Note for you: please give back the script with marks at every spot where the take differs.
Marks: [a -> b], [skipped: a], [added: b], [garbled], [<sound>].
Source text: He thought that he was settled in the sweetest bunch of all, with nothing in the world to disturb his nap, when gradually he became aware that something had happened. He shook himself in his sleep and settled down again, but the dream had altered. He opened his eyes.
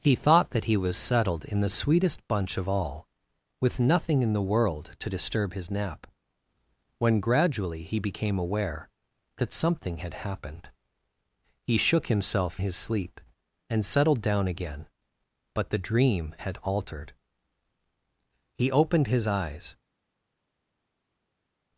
He thought that he was settled in the sweetest bunch of all, with nothing in the world to disturb his nap, when gradually he became aware that something had happened. He shook himself [skipped: in] his sleep and settled down again, but the dream had altered. He opened his eyes.